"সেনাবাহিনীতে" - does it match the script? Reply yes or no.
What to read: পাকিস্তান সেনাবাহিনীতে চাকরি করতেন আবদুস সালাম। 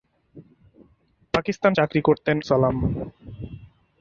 no